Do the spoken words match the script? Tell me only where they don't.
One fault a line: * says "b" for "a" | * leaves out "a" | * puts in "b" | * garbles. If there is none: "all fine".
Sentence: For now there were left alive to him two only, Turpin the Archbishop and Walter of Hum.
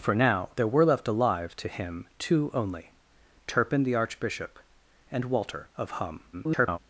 * garbles